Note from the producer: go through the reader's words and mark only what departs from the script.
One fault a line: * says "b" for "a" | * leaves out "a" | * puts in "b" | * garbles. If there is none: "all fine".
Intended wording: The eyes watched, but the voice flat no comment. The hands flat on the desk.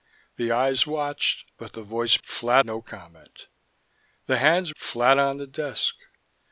all fine